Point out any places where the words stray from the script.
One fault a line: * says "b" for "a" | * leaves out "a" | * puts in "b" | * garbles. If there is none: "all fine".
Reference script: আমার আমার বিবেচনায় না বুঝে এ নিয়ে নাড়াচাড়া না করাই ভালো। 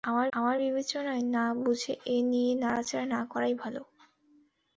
all fine